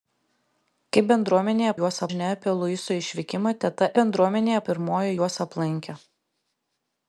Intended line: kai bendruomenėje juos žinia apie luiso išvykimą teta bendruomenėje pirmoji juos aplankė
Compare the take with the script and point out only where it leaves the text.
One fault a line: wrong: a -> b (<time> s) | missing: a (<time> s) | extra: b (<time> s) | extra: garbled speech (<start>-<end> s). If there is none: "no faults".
no faults